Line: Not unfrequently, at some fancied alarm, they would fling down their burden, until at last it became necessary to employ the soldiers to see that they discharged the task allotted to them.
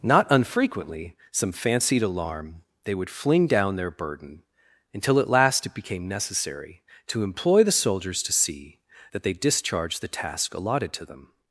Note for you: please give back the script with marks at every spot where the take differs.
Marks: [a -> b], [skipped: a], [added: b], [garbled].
Not unfrequently, [skipped: at] some fancied alarm, they would fling down their burden, until at last it became necessary to employ the soldiers to see that they discharged the task allotted to them.